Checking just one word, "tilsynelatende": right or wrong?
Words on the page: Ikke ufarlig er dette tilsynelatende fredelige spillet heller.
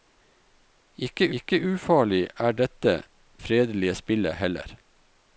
wrong